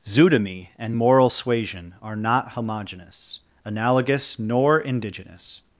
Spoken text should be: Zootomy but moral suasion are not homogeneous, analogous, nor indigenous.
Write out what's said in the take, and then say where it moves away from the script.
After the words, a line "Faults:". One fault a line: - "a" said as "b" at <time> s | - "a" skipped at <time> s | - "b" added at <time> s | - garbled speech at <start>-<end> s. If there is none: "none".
Zootomy and moral suasion are not homogeneous, analogous, nor indigenous.
Faults:
- "but" said as "and" at 0.8 s